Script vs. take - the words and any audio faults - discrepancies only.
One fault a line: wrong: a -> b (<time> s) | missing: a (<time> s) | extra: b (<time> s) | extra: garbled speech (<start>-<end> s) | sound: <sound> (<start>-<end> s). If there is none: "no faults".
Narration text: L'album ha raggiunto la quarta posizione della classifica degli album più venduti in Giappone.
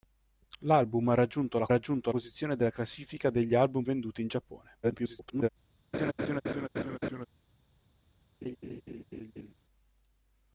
wrong: quarta -> raggiunto (1.7 s)
missing: più (3.8 s)
extra: garbled speech (4.8-5.5 s)
sound: laugh (5.9-7.3 s)
sound: laugh (8.4-9.5 s)